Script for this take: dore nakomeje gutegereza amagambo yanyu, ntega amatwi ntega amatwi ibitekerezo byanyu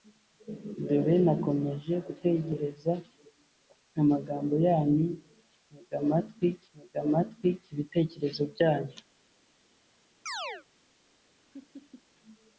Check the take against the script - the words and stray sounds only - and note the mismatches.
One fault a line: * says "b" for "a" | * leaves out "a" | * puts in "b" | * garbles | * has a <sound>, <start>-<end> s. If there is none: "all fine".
* has a chirp, 10.3-10.6 s
* has a laugh, 11.5-12.0 s